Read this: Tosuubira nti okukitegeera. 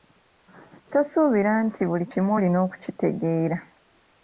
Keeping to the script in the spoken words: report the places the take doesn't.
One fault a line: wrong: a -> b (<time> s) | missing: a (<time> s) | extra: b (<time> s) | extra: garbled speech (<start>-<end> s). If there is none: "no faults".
extra: buli kimu olina (1.9 s)